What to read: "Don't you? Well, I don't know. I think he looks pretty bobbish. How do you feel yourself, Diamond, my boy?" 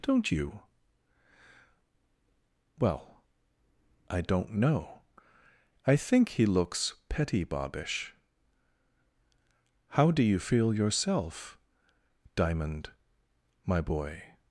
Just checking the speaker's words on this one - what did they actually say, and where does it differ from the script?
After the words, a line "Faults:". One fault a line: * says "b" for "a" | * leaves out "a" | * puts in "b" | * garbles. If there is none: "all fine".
"Don't you? Well, I don't know. I think he looks petty bobbish. How do you feel yourself, Diamond, my boy?"
Faults:
* says "petty" for "pretty"